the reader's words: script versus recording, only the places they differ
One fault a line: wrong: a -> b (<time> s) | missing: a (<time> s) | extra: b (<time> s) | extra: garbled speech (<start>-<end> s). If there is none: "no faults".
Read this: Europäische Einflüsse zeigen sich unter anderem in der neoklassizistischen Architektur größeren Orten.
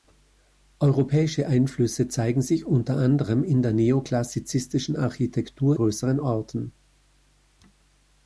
no faults